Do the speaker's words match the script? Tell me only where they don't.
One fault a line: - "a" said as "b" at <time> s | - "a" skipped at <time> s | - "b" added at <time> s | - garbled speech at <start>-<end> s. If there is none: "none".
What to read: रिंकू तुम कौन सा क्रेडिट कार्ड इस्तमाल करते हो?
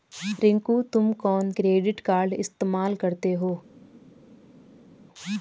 - "सा" skipped at 1.5 s